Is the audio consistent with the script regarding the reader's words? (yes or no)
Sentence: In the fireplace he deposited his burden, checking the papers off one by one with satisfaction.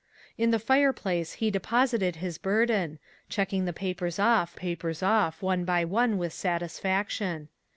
no